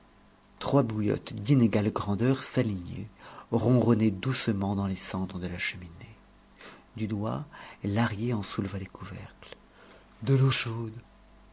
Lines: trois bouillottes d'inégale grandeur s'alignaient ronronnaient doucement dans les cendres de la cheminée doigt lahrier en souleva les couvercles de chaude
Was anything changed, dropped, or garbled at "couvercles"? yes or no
no